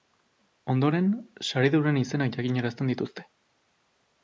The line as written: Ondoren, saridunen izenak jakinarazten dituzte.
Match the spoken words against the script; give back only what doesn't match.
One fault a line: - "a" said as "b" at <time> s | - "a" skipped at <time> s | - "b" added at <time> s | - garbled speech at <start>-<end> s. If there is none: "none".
none